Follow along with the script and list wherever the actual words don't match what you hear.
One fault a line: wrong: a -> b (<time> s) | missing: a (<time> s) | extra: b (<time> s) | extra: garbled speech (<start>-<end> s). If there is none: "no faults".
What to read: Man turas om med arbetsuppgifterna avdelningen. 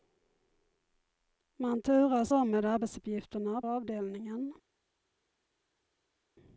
no faults